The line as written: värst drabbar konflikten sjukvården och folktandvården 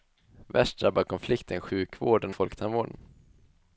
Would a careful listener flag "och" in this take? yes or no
yes